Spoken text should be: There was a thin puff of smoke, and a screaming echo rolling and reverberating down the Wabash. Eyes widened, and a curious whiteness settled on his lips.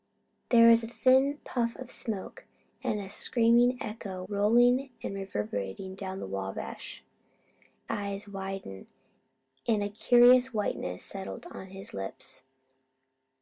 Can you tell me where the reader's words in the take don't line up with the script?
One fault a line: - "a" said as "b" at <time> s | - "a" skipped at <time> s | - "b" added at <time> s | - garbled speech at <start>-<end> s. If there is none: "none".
none